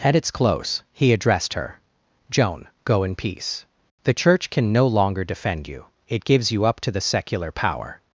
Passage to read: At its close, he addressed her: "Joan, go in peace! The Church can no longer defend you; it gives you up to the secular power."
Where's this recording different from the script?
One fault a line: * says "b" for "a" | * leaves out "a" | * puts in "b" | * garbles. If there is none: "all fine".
all fine